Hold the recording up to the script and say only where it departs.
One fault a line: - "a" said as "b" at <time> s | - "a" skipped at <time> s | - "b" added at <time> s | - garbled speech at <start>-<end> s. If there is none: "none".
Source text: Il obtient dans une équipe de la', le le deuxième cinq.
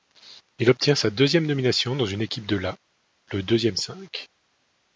- "sa deuxième nomination" added at 0.9 s
- "le" skipped at 3.4 s